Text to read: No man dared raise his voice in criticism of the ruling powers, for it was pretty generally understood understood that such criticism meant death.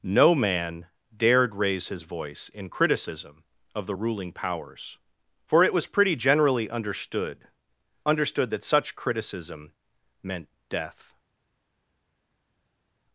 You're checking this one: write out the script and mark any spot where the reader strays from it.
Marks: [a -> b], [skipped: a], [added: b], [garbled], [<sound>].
No man dared raise his voice in criticism of the ruling powers, for it was pretty generally understood understood that such criticism meant death.